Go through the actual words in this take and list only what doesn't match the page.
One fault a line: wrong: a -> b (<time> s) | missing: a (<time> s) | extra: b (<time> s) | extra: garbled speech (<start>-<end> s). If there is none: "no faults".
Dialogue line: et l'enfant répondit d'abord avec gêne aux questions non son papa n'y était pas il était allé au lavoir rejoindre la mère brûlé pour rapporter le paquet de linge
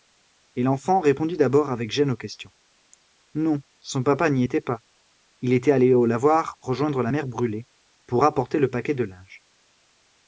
no faults